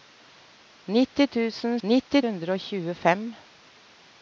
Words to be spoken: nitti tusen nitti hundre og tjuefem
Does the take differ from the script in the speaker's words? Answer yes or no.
no